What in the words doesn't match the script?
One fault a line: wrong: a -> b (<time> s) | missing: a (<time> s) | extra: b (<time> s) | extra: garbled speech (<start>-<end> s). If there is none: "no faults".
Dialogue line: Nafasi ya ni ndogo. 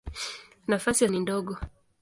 no faults